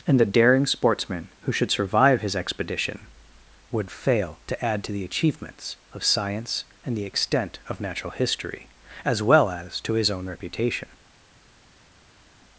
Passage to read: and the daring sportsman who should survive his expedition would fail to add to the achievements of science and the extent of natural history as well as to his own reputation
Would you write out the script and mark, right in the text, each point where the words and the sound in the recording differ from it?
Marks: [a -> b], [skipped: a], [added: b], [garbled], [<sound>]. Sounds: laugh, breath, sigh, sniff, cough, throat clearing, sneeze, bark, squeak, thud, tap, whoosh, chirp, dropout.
and the daring sportsman who should survive his expedition would fail to add to the achievements of science and the extent of natural history as well as to his own reputation